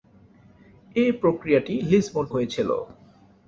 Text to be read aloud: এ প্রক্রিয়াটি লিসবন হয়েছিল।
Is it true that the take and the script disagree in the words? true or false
false